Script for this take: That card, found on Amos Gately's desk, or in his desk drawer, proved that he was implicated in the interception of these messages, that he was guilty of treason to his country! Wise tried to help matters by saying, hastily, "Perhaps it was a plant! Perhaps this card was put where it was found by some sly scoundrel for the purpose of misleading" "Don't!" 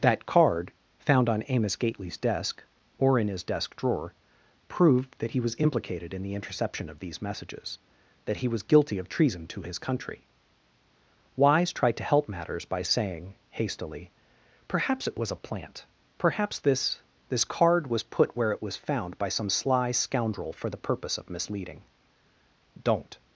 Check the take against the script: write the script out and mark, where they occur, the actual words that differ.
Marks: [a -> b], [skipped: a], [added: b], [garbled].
That card, found on Amos Gately's desk, or in his desk drawer, proved that he was implicated in the interception of these messages, that he was guilty of treason to his country! Wise tried to help matters by saying, hastily, "Perhaps it was a plant! Perhaps this [added: this] card was put where it was found by some sly scoundrel for the purpose of misleading" "Don't!"